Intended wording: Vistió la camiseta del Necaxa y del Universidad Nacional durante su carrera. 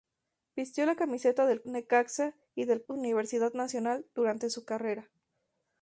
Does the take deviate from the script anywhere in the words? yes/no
no